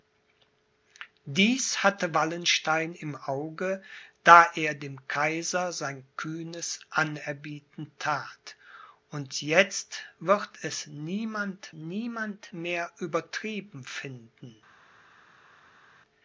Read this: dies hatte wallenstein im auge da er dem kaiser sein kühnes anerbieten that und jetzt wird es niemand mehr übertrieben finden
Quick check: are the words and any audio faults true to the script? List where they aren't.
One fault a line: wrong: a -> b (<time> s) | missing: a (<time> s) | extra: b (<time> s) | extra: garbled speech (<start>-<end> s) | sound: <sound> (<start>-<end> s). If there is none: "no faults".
extra: niemand (11.7 s)